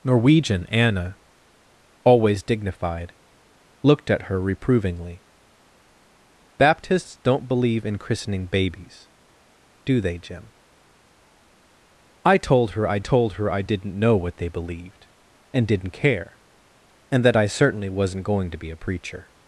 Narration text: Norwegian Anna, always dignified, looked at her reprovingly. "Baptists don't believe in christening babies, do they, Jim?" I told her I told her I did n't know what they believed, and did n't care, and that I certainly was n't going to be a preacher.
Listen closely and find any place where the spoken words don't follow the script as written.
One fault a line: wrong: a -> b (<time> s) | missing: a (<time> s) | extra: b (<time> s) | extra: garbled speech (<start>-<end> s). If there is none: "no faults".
no faults